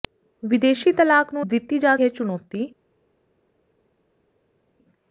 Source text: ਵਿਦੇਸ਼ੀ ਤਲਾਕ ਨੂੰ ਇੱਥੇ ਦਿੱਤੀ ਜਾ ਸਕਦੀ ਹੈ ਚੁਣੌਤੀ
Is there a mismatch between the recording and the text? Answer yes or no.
yes